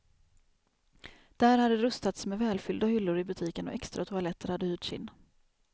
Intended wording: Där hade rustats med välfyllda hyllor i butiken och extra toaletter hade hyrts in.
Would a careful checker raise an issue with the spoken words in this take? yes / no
no